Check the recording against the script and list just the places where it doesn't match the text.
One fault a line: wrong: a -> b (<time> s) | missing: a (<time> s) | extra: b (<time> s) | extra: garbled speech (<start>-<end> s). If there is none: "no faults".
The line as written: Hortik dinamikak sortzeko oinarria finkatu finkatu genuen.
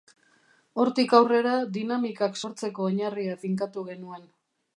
extra: aurrera (1.2 s)
missing: finkatu (3.9 s)